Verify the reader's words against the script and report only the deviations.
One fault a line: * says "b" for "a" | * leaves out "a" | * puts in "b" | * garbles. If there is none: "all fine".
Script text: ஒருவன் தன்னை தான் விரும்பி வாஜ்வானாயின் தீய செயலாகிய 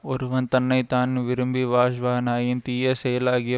all fine